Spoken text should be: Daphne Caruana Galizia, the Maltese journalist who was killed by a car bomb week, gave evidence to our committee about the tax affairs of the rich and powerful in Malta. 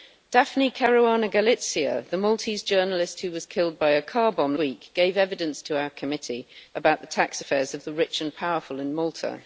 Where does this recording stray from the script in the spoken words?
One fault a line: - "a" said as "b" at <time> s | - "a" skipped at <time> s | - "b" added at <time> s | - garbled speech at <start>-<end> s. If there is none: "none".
none